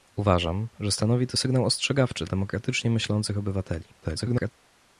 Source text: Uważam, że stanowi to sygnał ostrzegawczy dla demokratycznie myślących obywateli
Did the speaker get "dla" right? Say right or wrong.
wrong